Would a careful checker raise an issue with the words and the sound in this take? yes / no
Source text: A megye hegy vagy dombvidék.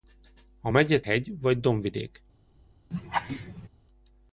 yes